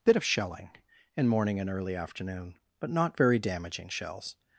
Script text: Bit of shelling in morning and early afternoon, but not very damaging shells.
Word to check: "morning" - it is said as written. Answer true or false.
true